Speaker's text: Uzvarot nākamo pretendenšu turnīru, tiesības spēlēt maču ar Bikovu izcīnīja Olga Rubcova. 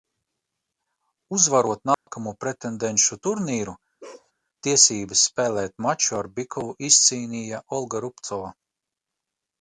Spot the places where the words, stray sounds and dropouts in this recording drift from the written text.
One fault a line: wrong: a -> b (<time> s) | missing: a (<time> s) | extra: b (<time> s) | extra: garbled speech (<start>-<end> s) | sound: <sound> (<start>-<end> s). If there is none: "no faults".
sound: dropout (1.9-2.1 s)
sound: bark (4.0-4.3 s)